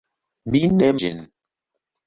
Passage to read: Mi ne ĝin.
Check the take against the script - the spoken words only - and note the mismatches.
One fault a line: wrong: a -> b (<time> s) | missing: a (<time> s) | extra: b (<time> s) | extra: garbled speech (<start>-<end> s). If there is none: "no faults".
no faults